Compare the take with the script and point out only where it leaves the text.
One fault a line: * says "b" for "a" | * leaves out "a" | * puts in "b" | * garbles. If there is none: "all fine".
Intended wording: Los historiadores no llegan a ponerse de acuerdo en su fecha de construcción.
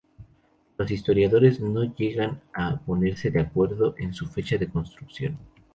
all fine